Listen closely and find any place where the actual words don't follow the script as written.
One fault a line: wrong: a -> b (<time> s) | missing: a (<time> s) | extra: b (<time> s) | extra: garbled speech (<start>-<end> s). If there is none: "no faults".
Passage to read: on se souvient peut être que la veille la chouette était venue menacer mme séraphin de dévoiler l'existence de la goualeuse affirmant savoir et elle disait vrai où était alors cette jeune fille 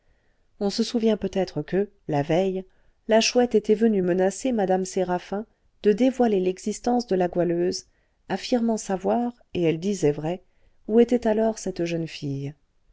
no faults